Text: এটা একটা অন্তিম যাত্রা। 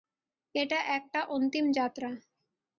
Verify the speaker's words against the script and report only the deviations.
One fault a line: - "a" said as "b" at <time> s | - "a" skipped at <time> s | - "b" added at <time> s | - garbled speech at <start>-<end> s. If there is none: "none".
none